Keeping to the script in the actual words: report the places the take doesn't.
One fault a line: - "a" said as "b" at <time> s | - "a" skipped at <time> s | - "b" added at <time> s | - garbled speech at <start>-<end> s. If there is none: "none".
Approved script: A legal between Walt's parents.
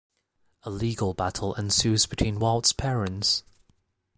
- "battle ensues" added at 1.1 s